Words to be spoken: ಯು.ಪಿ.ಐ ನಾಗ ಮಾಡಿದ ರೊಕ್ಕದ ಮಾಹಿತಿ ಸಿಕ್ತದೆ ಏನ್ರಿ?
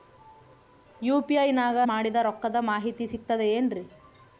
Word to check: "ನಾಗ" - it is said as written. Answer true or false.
true